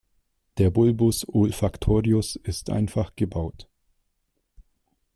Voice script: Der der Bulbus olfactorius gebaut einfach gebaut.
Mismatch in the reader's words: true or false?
true